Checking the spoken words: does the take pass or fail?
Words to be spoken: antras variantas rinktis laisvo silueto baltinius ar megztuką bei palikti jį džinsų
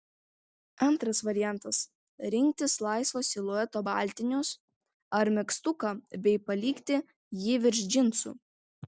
fail